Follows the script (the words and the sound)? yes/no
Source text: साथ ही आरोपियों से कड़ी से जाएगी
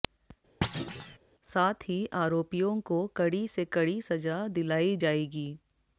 no